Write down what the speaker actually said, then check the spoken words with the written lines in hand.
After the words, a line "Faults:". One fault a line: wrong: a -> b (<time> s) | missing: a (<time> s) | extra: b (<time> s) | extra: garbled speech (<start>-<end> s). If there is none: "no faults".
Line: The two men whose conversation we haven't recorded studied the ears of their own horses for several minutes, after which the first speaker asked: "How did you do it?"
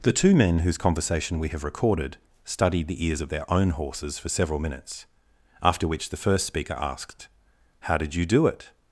The two men whose conversation we have recorded studied the ears of their own horses for several minutes, after which the first speaker asked: "How did you do it?"
Faults:
wrong: haven't -> have (1.5 s)